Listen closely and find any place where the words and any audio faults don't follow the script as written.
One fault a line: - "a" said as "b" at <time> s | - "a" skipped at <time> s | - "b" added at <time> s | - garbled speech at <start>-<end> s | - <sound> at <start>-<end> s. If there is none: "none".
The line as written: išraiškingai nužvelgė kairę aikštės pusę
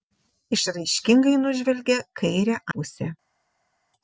- "aikštės" skipped at 2.6 s